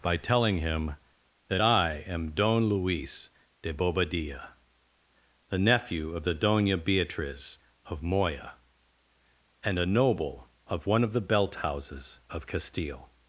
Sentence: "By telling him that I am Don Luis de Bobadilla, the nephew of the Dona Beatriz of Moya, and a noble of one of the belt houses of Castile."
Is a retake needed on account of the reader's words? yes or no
no